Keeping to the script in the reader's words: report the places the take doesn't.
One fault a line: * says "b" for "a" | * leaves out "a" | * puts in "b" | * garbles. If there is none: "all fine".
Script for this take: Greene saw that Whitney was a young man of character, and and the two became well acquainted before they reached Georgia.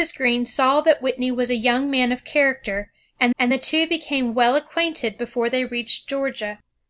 all fine